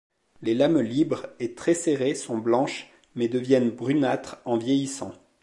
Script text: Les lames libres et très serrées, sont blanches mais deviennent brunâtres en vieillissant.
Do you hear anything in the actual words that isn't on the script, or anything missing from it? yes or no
no